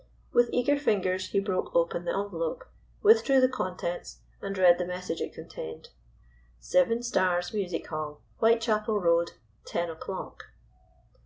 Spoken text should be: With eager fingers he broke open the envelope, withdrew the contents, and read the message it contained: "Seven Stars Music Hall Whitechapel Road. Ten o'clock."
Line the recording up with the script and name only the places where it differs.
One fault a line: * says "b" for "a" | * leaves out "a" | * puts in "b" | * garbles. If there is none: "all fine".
all fine